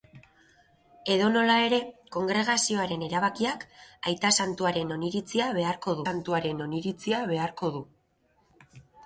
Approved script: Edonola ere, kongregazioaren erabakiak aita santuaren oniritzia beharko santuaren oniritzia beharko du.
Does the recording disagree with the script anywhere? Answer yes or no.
no